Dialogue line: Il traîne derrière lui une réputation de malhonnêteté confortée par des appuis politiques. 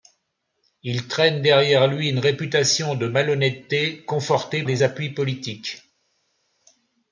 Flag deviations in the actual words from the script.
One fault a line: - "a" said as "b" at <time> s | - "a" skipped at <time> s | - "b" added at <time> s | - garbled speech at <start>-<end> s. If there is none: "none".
- "par" skipped at 4.6 s